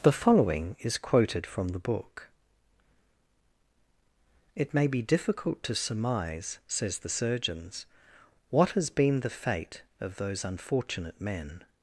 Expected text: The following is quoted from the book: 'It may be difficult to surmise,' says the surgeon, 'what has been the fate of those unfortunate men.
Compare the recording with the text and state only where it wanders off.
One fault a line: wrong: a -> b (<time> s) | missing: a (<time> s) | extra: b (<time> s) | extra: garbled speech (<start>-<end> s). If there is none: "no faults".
wrong: surgeon -> surgeons (7.1 s)